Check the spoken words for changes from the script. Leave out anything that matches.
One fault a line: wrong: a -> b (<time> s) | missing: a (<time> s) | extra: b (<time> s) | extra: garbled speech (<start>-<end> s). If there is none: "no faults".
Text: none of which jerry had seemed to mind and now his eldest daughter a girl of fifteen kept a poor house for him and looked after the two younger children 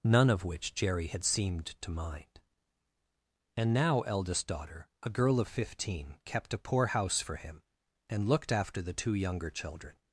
missing: his (4.0 s)